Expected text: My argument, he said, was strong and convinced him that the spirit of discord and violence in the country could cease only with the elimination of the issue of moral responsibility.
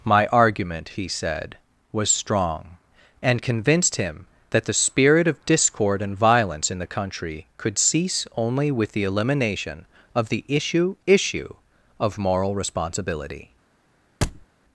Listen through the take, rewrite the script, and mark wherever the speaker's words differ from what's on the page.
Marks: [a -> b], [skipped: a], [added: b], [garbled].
My argument, he said, was strong and convinced him that the spirit of discord and violence in the country could cease only with the elimination of the issue [added: issue] of moral responsibility.